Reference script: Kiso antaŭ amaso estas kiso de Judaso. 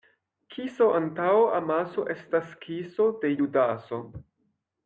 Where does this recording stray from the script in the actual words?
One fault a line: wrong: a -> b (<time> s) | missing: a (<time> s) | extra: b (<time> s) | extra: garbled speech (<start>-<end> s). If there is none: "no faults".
no faults